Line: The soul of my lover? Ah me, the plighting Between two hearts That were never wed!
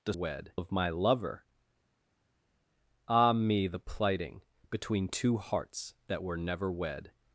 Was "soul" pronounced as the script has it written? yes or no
no